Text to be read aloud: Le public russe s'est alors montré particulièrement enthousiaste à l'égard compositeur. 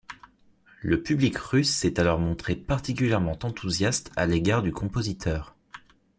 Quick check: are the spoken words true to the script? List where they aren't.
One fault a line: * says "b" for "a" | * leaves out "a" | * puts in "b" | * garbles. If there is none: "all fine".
* puts in "du"